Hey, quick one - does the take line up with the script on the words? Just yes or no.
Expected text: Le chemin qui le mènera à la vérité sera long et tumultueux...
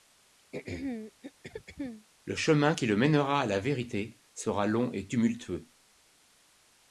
yes